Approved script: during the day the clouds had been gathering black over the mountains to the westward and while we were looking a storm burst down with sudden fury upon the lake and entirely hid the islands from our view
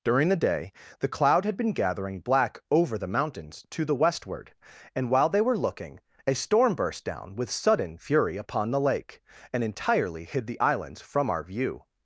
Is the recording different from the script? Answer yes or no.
yes